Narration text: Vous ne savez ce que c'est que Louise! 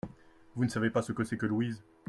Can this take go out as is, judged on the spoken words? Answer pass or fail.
fail